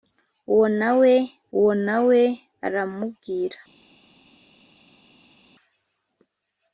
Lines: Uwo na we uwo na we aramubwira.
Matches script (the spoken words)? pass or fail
pass